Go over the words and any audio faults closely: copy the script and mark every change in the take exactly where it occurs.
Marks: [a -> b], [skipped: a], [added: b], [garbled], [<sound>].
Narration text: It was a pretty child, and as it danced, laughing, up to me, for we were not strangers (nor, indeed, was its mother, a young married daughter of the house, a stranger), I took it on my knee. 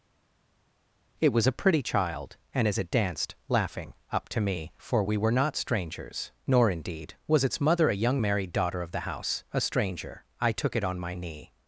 It was a pretty child, and as it danced, laughing, up to me, for we were not strangers (nor, indeed, was its mother, a young married daughter of the house, a stranger), I took it on my knee.